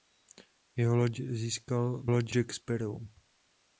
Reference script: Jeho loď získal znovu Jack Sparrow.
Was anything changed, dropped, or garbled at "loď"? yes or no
no